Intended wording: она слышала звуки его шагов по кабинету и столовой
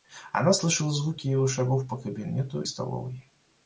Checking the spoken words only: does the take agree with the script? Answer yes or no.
no